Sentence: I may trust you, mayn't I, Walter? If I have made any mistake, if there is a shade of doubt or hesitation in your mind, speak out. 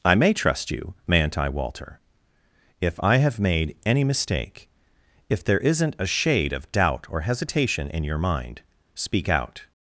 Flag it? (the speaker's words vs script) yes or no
yes